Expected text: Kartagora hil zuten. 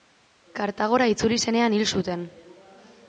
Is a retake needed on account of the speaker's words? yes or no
yes